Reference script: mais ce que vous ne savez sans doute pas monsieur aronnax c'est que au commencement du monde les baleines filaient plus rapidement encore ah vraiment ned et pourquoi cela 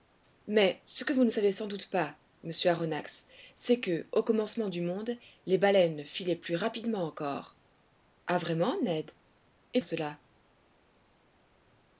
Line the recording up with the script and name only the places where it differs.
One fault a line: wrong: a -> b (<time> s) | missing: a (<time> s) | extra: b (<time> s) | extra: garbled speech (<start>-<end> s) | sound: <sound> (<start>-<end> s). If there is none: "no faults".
missing: pourquoi (9.8 s)